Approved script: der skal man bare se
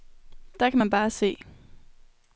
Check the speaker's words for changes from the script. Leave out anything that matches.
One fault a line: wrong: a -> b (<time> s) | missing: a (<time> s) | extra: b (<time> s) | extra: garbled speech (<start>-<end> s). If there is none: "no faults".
wrong: skal -> kan (0.7 s)